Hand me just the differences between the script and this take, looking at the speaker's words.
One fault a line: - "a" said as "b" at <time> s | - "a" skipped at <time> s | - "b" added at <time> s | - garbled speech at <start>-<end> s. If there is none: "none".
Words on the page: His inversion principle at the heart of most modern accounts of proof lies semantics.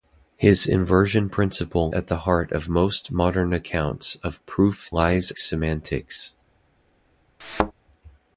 none